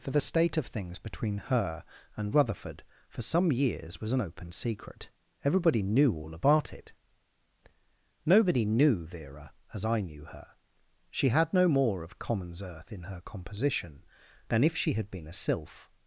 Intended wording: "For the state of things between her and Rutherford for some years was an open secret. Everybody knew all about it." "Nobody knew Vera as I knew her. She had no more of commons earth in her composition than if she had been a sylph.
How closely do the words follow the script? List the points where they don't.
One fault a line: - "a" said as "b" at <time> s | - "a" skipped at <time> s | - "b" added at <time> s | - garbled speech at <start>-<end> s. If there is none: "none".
none